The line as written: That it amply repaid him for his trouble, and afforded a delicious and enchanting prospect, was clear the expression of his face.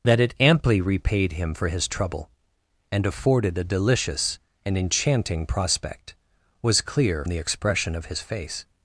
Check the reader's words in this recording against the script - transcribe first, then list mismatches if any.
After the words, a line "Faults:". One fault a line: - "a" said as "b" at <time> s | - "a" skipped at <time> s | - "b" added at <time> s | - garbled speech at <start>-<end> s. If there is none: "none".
That it amply repaid him for his trouble, and afforded a delicious and enchanting prospect, was clear the expression of his face.
Faults:
none